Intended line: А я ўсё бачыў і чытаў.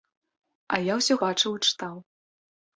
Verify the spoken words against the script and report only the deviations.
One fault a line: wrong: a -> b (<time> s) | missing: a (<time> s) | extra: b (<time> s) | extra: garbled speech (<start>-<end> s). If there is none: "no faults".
no faults